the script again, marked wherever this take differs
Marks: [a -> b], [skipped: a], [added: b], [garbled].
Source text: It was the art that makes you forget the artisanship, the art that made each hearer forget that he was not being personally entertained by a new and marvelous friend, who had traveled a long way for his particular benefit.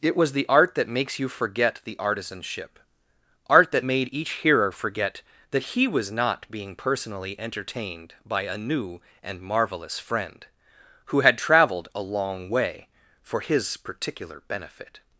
It was the art that makes you forget the artisanship, [skipped: the] art that made each hearer forget that he was not being personally entertained by a new and marvelous friend, who had traveled a long way for his particular benefit.